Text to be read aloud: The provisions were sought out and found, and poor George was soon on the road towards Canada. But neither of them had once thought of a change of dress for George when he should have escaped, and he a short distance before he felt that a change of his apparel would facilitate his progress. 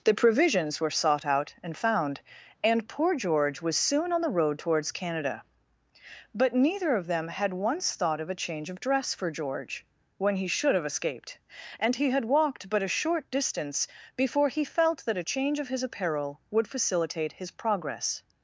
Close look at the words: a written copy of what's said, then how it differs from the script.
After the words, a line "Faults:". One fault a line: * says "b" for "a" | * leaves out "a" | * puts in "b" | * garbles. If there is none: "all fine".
The provisions were sought out and found, and poor George was soon on the road towards Canada. But neither of them had once thought of a change of dress for George when he should have escaped, and he had walked but a short distance before he felt that a change of his apparel would facilitate his progress.
Faults:
* puts in "had walked but"